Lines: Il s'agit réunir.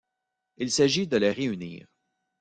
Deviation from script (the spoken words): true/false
true